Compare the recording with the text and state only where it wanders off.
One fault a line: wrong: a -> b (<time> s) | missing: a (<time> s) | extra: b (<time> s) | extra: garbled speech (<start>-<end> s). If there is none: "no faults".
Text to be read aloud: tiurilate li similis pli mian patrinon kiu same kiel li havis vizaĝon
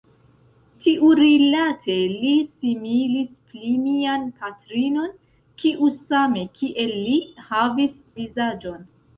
no faults